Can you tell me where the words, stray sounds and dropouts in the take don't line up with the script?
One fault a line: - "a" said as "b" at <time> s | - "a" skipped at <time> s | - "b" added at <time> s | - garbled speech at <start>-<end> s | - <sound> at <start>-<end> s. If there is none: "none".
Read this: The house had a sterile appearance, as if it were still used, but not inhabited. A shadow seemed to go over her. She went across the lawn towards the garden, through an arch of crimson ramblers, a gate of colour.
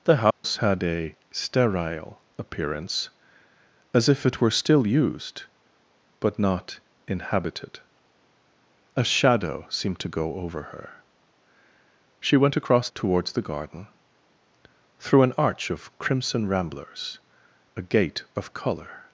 - dropout at 0.3-0.4 s
- "the lawn" skipped at 12.9 s